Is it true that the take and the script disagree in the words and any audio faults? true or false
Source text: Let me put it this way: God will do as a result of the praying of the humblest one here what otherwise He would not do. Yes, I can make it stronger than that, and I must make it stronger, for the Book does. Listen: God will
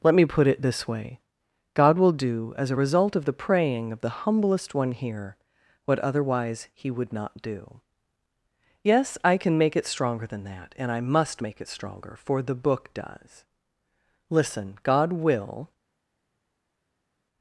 false